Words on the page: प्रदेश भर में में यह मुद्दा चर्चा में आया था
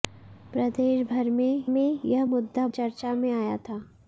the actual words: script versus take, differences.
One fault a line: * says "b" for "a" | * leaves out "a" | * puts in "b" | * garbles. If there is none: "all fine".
all fine